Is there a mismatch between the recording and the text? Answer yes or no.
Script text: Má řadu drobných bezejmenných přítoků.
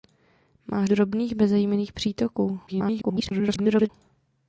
yes